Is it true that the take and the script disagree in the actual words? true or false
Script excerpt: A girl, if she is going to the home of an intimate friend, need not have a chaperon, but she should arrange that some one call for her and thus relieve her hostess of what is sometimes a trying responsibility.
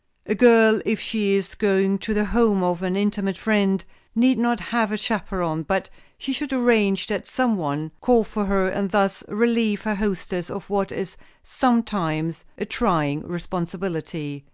false